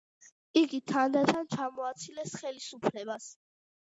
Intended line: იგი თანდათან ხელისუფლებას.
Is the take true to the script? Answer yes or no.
no